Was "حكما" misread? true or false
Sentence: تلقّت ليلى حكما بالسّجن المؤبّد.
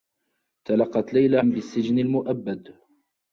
true